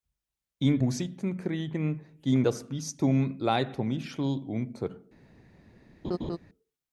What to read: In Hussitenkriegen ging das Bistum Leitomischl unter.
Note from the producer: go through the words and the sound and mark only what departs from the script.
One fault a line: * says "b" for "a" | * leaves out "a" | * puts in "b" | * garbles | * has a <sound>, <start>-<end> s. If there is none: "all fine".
* has a laugh, 6.0-6.4 s